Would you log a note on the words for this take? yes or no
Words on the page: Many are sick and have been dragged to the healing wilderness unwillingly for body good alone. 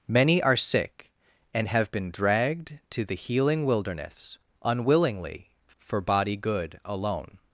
no